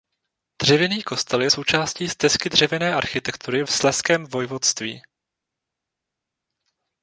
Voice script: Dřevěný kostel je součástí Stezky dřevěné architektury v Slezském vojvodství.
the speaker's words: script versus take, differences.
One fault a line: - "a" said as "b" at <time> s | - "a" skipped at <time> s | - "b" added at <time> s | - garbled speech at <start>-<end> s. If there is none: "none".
none